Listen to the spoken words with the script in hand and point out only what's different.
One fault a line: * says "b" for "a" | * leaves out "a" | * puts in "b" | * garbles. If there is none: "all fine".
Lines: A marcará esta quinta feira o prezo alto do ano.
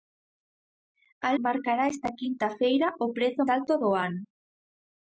all fine